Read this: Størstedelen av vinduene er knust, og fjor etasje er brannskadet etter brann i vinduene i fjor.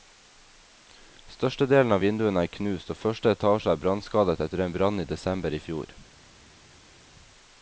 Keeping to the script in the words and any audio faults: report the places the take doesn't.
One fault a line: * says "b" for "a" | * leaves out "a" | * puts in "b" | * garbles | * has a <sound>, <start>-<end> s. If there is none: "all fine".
* says "første" for "fjor"
* puts in "en"
* says "desember" for "vinduene"